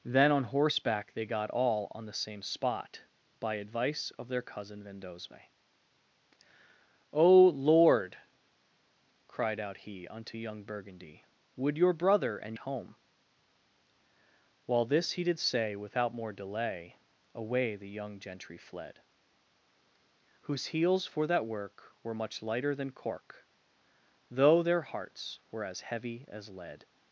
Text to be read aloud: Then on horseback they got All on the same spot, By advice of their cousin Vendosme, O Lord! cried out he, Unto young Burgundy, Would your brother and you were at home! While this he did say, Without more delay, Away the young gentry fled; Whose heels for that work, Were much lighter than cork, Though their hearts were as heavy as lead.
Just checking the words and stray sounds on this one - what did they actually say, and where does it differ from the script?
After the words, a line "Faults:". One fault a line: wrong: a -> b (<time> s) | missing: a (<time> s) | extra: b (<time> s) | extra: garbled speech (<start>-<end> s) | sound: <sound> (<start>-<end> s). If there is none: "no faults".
Then on horseback they got All on the same spot, By advice of their cousin Vendosme, O Lord! cried out he, Unto young Burgundy, Would your brother and home! While this he did say, Without more delay, Away the young gentry fled; Whose heels for that work, Were much lighter than cork, Though their hearts were as heavy as lead.
Faults:
missing: you were at (12.6 s)